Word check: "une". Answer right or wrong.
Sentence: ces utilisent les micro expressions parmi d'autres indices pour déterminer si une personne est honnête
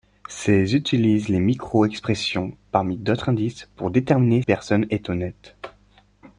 wrong